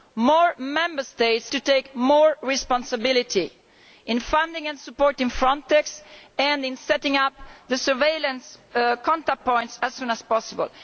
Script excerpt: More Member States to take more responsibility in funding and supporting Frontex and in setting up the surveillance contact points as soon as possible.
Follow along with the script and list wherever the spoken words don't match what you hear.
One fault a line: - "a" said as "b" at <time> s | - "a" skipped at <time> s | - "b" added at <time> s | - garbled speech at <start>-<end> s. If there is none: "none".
none